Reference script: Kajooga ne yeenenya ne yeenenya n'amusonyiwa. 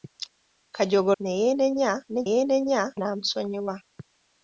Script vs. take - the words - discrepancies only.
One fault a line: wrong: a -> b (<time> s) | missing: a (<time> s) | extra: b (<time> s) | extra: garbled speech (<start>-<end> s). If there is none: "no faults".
no faults